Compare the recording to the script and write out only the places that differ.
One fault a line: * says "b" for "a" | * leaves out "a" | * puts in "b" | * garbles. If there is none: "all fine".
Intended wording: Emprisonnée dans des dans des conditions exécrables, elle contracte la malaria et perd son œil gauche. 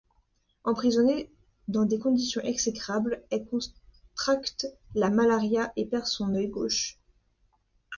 * leaves out "dans des"